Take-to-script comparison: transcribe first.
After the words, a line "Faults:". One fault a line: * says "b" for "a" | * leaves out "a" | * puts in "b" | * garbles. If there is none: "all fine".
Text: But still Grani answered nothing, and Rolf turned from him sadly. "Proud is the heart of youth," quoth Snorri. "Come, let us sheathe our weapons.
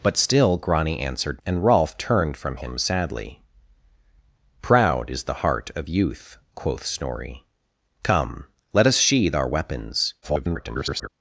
But still Grani answered and Rolf turned from him sadly. "Proud is the heart of youth," quoth Snorri. "Come, let us sheathe our weapons. [garbled]
Faults:
* leaves out "nothing"
* garbles